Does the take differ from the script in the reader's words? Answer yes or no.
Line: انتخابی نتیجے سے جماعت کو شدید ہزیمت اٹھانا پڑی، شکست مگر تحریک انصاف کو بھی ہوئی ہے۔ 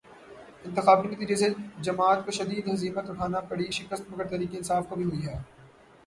no